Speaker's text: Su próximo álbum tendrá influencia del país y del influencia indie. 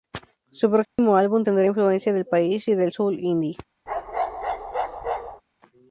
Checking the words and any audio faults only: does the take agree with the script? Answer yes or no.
no